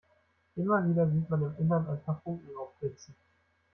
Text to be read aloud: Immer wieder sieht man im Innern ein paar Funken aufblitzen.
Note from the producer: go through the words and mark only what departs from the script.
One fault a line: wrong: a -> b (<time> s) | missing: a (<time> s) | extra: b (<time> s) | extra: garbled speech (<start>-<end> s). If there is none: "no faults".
no faults